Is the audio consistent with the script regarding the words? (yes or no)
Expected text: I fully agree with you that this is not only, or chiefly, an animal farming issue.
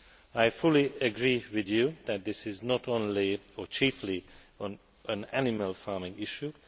yes